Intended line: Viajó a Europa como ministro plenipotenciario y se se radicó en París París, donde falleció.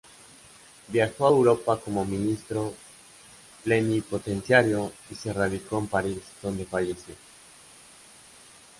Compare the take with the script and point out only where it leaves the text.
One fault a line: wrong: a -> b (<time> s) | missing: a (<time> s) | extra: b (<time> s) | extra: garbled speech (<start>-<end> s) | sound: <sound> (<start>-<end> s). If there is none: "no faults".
missing: se (5.3 s)
missing: París (6.2 s)